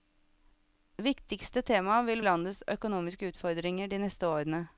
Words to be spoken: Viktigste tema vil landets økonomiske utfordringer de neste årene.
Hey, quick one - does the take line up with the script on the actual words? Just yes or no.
yes